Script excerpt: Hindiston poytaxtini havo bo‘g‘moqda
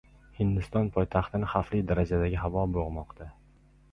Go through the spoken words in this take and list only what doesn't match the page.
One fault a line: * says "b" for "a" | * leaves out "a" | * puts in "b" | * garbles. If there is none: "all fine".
* puts in "xavfli darajadagi"